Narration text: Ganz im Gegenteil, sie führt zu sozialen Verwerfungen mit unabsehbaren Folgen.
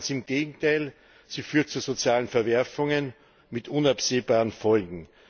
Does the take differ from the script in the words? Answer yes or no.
no